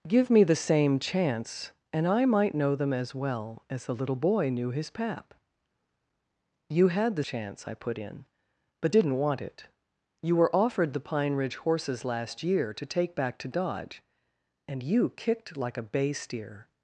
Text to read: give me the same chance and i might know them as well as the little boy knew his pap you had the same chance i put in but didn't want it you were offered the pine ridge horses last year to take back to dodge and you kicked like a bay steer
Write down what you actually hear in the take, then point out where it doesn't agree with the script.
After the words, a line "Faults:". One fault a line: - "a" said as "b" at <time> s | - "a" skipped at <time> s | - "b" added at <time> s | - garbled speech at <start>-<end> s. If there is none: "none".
give me the same chance and i might know them as well as the little boy knew his pap you had the chance i put in but didn't want it you were offered the pine ridge horses last year to take back to dodge and you kicked like a bay steer
Faults:
- "same" skipped at 7.2 s